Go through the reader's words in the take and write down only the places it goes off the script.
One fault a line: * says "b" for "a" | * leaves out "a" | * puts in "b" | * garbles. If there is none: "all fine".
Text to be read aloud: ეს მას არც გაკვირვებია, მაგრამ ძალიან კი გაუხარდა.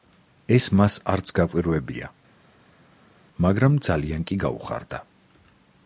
all fine